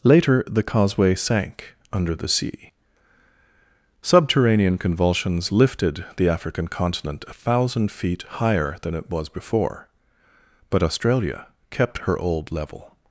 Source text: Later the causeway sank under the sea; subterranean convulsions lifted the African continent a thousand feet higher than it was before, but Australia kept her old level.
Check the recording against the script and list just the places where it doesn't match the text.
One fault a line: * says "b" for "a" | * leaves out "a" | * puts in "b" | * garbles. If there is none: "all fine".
all fine